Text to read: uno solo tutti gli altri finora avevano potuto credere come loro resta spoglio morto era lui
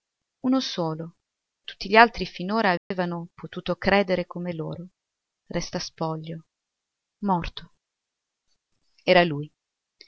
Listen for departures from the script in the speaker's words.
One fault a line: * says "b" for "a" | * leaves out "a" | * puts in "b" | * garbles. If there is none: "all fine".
all fine